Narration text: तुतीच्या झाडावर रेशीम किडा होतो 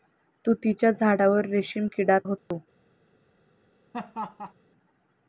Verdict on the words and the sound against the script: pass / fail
fail